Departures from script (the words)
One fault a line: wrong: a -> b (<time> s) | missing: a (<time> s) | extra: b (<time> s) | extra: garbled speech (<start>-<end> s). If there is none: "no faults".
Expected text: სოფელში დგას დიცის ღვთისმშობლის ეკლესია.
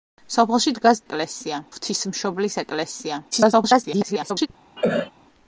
wrong: დიცის -> ეკლესია (1.1 s)
extra: garbled speech (3.3-4.5 s)